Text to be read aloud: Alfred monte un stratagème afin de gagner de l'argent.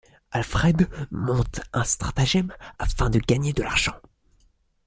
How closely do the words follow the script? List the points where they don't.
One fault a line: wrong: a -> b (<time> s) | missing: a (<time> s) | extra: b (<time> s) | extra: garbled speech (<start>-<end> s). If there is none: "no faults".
no faults